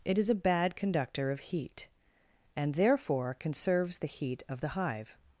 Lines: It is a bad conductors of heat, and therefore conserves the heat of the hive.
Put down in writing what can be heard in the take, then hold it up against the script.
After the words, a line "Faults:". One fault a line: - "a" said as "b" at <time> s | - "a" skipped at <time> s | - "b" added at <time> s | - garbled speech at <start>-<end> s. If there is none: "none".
It is a bad conductor of heat, and therefore conserves the heat of the hive.
Faults:
- "conductors" said as "conductor" at 0.8 s